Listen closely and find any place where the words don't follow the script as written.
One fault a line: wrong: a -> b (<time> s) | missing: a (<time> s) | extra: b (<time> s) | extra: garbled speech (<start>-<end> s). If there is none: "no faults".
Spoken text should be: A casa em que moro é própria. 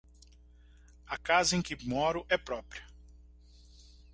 no faults